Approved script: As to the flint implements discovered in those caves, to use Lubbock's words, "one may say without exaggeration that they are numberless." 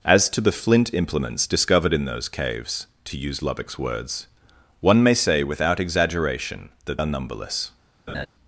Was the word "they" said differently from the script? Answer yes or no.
yes